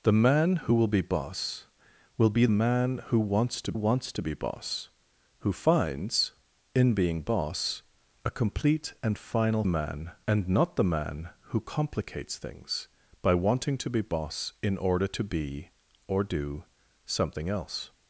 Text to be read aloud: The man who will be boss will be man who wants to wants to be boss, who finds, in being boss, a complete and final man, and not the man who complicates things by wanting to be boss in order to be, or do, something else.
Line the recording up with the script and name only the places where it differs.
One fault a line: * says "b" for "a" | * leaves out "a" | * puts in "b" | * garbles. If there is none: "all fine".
all fine